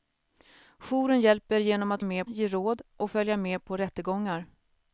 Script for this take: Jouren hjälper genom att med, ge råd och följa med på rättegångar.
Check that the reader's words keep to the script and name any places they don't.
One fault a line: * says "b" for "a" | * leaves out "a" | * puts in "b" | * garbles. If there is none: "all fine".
all fine